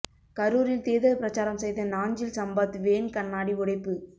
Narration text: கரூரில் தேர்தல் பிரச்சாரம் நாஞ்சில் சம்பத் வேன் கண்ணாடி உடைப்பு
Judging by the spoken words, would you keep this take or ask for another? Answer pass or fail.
fail